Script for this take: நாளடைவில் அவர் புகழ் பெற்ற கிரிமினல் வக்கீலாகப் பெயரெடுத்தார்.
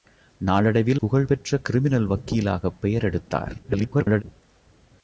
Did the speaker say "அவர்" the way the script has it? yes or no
no